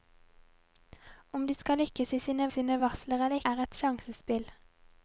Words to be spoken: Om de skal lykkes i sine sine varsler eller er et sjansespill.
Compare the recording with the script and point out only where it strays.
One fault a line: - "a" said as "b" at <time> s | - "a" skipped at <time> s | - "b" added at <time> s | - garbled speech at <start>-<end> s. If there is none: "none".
none